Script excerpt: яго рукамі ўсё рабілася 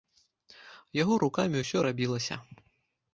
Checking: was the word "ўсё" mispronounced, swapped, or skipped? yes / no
no